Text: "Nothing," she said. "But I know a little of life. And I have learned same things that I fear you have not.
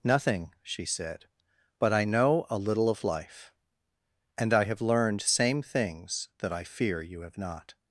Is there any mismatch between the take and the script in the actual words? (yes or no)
no